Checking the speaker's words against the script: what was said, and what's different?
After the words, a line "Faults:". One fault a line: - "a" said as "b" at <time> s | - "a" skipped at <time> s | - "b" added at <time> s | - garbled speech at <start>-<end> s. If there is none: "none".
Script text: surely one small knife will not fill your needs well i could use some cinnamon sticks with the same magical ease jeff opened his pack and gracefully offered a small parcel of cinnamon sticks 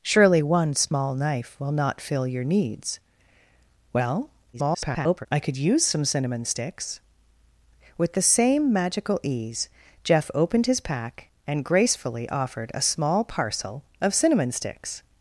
surely one small knife will not fill your needs well [garbled] i could use some cinnamon sticks with the same magical ease jeff opened his pack and gracefully offered a small parcel of cinnamon sticks
Faults:
- garbled speech at 4.5-5.3 s